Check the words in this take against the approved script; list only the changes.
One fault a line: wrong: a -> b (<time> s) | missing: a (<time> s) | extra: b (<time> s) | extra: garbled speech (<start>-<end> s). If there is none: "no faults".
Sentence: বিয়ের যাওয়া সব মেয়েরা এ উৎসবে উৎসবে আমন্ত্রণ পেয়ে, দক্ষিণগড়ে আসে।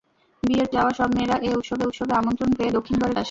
no faults